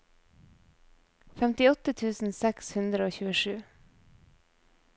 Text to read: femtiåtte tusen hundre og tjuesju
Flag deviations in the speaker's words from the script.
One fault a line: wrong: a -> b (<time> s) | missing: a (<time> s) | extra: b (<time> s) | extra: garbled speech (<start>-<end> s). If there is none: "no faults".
extra: seks (2.4 s)